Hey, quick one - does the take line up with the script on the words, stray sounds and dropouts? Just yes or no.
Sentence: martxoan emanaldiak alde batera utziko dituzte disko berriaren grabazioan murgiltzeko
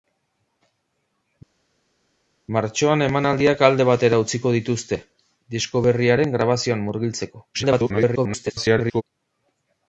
no